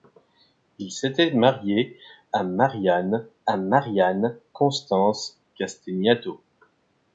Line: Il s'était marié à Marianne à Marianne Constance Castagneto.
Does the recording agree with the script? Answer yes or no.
yes